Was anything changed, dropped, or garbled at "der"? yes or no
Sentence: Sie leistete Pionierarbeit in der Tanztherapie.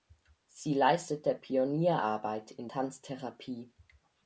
yes